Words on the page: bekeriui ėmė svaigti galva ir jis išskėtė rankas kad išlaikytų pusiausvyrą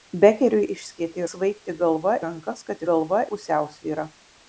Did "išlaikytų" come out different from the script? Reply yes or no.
yes